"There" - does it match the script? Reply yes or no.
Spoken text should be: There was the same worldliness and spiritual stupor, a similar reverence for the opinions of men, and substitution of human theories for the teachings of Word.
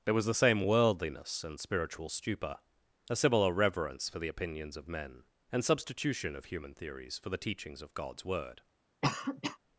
yes